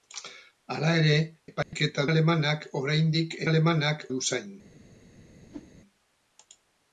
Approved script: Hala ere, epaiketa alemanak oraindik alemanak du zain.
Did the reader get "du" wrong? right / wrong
right